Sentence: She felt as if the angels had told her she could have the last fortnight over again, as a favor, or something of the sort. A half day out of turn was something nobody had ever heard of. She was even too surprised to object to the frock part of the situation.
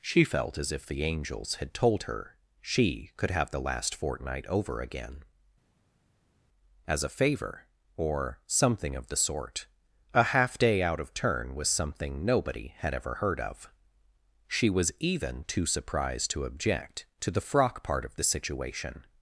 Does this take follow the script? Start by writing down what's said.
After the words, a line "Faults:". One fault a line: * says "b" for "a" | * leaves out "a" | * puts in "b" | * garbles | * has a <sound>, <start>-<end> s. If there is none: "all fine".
She felt as if the angels had told her she could have the last fortnight over again, as a favor, or something of the sort. A half day out of turn was something nobody had ever heard of. She was even too surprised to object to the frock part of the situation.
Faults:
all fine